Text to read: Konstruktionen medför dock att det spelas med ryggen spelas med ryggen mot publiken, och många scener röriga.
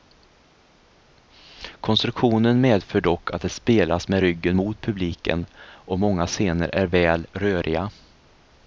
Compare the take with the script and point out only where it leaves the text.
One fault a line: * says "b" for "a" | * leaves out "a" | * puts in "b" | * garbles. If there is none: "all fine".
* leaves out "spelas med ryggen"
* puts in "är väl"